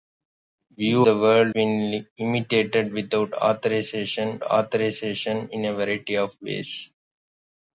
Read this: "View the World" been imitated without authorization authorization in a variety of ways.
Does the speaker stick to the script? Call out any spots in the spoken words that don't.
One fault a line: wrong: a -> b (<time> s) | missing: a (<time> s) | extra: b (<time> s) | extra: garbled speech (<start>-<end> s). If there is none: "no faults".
no faults